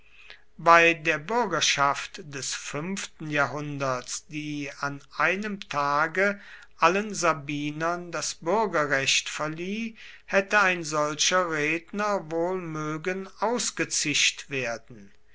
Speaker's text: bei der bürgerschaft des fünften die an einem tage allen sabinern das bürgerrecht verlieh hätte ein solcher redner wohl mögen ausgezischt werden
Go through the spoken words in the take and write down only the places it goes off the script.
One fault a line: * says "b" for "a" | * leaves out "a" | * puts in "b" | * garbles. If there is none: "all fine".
* puts in "jahrhunderts"